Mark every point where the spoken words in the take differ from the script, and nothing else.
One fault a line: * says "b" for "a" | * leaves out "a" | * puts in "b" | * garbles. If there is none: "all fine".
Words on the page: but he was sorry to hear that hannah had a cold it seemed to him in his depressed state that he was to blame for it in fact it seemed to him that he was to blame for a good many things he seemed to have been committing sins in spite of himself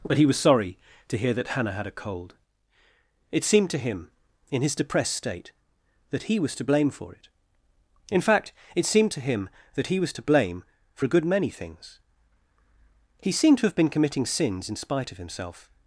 all fine